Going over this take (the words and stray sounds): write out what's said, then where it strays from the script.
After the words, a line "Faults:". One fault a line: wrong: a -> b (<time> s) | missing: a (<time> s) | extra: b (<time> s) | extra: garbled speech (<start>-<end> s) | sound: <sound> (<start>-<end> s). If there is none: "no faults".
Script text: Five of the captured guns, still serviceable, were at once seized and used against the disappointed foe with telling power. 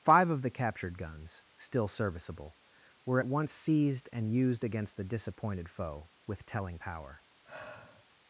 Five of the captured guns, still serviceable, were at once seized and used against the disappointed foe with telling power.
Faults:
sound: sigh (7.4-8.1 s)